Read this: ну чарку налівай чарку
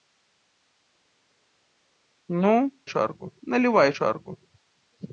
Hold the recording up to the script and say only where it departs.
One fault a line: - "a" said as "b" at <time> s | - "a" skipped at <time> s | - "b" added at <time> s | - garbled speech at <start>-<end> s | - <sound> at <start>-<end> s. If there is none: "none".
none